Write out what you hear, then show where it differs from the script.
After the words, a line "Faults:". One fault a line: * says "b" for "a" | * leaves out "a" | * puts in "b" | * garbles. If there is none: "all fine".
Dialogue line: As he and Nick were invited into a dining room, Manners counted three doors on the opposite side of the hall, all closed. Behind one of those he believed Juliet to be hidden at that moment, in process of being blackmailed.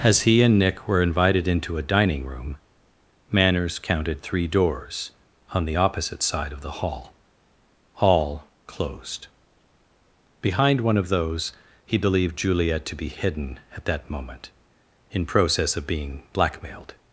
As he and Nick were invited into a dining room, Manners counted three doors on the opposite side of the hall, all closed. Behind one of those he believed Juliet to be hidden at that moment, in process of being blackmailed.
Faults:
all fine